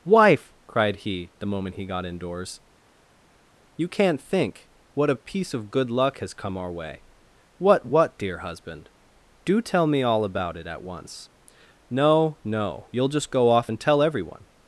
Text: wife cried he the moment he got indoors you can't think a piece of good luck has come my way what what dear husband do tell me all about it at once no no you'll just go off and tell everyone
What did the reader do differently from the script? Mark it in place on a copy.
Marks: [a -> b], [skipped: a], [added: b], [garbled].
wife cried he the moment he got indoors you can't think [added: what] a piece of good luck has come [my -> our] way what what dear husband do tell me all about it at once no no you'll just go off and tell everyone